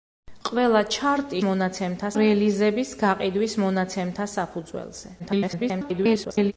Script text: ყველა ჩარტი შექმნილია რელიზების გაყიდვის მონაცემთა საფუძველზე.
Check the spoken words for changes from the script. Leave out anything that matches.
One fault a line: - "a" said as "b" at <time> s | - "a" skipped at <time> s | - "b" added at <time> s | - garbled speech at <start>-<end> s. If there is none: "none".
- "შექმნილია" said as "მონაცემთა" at 1.5 s
- garbled speech at 5.2-6.5 s